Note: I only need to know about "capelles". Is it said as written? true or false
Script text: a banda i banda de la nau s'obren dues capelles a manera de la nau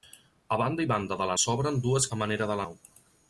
false